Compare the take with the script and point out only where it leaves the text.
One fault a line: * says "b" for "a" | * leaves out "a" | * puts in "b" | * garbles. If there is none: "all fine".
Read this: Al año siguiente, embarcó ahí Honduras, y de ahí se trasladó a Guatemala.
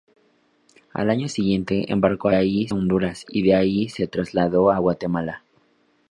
all fine